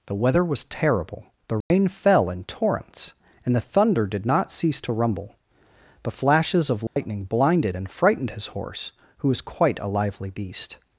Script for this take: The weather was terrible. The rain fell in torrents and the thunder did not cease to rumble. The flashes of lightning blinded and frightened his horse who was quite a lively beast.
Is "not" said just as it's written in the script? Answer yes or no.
yes